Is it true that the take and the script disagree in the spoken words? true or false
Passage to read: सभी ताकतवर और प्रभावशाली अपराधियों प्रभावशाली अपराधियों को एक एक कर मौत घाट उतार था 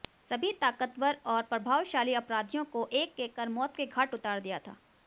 true